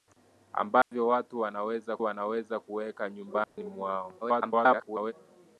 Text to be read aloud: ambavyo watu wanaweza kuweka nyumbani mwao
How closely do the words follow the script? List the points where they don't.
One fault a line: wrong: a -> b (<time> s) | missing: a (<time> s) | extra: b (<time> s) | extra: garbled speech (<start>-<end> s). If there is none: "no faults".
extra: wanaweza (2.0 s)
extra: garbled speech (4.2-5.1 s)